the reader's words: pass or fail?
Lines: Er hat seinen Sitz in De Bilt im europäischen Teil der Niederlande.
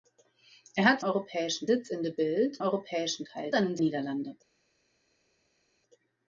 fail